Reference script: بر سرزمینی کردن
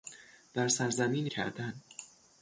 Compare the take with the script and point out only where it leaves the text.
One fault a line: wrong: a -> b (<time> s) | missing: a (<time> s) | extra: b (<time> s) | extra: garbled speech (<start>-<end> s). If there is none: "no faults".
no faults